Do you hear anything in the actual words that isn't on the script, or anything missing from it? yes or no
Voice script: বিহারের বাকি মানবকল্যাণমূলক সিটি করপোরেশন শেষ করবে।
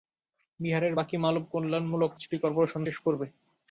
no